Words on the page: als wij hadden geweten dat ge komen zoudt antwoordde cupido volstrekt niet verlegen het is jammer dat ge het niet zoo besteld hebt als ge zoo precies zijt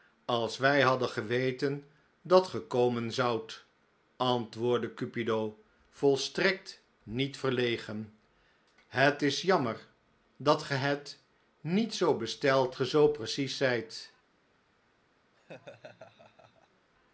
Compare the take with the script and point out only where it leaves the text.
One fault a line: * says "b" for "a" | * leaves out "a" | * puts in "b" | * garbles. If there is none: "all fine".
* leaves out "hebt als"